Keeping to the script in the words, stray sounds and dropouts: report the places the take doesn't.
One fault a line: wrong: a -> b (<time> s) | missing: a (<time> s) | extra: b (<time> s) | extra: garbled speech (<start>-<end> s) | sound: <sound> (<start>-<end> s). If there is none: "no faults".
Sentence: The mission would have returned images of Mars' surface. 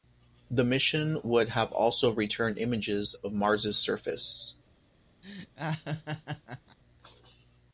extra: also (1.7 s)
sound: laugh (5.2-6.8 s)